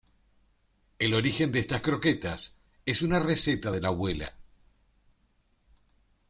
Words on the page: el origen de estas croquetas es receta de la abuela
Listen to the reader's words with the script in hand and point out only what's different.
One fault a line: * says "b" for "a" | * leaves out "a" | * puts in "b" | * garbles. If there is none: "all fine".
* puts in "una"